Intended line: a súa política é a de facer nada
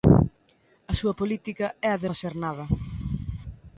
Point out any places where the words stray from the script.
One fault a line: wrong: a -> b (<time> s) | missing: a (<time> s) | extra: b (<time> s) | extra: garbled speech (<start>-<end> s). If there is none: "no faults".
no faults